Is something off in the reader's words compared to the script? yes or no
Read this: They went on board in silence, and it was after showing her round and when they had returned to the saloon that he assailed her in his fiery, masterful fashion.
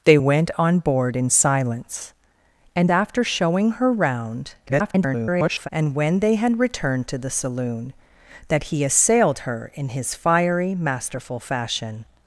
yes